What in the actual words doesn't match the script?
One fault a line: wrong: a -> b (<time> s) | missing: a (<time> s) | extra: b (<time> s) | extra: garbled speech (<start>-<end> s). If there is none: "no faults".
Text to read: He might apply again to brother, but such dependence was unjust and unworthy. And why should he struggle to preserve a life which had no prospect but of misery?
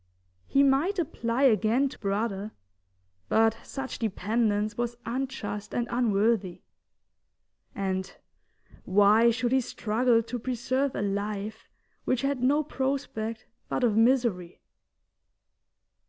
no faults